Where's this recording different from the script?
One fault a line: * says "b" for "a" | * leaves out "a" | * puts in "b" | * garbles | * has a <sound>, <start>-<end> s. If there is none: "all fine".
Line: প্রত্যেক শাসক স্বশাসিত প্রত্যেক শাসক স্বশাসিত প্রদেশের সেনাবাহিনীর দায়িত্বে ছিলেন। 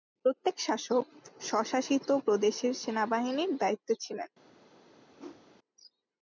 * leaves out "প্রত্যেক শাসক স্বশাসিত"
* has a whoosh, 5.2-5.5 s